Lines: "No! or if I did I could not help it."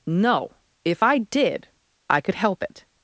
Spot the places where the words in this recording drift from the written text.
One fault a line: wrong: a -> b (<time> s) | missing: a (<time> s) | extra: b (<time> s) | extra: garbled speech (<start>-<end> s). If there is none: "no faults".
missing: or (0.5 s)
missing: not (2.3 s)